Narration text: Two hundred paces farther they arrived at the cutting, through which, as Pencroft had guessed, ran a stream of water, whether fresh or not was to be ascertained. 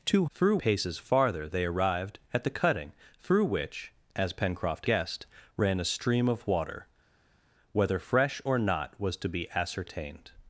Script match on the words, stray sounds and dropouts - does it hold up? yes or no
no